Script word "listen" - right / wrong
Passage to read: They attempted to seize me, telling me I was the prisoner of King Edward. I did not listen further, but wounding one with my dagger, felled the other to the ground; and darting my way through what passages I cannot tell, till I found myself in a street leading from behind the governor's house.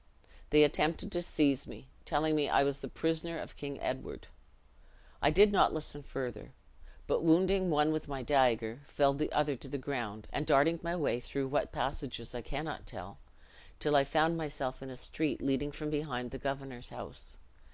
right